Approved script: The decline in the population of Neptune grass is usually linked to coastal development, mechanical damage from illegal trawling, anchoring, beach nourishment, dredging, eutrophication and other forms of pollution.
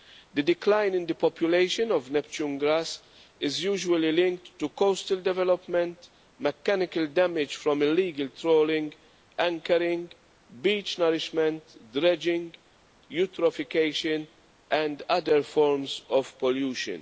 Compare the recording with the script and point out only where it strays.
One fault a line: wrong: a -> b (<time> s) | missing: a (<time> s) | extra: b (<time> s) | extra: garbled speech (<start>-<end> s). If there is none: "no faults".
no faults